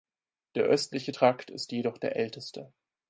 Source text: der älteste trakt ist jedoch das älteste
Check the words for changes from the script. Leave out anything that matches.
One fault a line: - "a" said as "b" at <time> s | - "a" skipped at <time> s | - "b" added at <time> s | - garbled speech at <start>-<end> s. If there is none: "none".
- "älteste" said as "östliche" at 0.6 s
- "das" said as "der" at 2.0 s